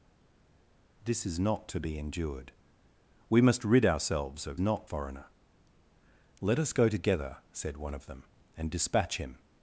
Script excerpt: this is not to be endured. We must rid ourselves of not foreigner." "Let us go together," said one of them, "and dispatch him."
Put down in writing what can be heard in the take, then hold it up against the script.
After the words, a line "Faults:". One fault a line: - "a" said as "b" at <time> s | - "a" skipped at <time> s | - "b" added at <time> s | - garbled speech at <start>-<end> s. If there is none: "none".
this is not to be endured. We must rid ourselves of not foreigner." "Let us go together," said one of them, "and dispatch him."
Faults:
none